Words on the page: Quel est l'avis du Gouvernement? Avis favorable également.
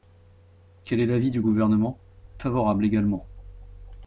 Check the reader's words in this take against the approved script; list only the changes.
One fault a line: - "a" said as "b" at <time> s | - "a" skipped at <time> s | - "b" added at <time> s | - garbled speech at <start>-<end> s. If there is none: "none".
- "Avis" skipped at 2.0 s